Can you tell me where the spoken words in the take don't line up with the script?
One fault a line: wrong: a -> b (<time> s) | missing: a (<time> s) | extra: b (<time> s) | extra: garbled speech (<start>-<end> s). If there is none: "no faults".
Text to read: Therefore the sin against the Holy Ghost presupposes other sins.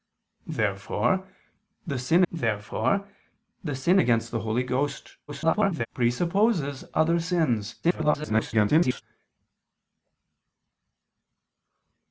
extra: therefore the sin (2.3 s)
extra: garbled speech (5.3-5.9 s)
extra: garbled speech (7.8-9.0 s)